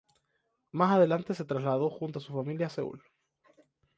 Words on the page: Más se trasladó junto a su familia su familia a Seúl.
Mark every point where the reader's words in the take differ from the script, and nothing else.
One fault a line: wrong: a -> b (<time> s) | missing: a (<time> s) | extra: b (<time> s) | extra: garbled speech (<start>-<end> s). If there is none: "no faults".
extra: adelante (0.9 s)
missing: su familia (2.6 s)